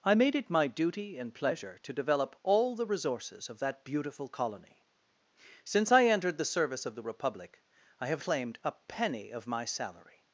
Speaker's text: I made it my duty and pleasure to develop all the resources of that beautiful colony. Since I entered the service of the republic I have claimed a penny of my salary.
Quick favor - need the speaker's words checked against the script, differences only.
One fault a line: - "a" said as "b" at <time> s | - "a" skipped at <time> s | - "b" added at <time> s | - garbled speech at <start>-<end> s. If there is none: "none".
none